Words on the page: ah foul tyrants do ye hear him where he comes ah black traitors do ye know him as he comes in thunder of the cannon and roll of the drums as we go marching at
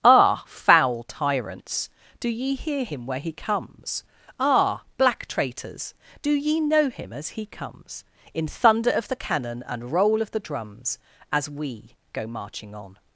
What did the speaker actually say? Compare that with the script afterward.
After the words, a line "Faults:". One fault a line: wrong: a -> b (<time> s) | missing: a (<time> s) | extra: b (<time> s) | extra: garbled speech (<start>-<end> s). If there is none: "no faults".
ah foul tyrants do ye hear him where he comes ah black traitors do ye know him as he comes in thunder of the cannon and roll of the drums as we go marching on
Faults:
wrong: at -> on (12.7 s)